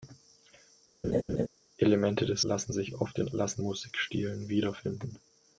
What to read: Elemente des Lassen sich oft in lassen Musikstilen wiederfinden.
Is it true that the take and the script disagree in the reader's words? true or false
false